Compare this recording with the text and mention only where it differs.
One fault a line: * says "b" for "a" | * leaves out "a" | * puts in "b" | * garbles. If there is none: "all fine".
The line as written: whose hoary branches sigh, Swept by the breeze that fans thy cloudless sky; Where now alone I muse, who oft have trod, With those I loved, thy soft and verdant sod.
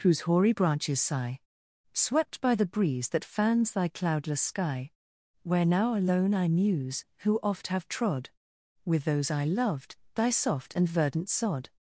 all fine